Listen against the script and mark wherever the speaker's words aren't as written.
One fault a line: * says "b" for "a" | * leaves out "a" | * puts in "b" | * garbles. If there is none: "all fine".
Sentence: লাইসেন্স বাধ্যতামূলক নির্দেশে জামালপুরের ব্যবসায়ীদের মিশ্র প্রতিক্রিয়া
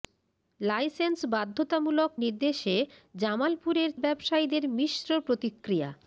all fine